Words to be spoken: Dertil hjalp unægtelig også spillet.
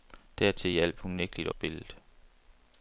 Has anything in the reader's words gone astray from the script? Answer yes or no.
yes